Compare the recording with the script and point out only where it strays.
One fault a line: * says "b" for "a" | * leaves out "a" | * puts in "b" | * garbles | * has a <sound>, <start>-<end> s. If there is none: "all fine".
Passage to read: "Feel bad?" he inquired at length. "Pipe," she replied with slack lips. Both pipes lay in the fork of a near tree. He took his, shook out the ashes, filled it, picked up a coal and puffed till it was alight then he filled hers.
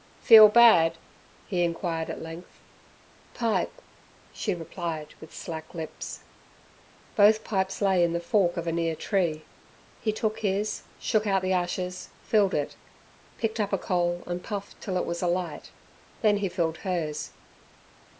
all fine